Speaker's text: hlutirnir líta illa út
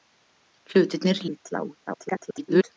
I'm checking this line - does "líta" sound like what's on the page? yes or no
no